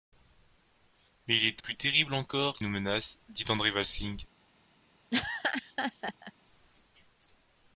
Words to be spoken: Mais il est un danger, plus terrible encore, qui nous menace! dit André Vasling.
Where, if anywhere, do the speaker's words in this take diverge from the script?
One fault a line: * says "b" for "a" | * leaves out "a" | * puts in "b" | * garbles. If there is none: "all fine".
* leaves out "un danger"
* leaves out "qui"